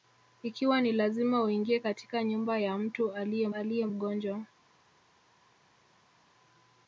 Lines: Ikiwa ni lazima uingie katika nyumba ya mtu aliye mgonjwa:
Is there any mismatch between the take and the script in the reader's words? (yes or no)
yes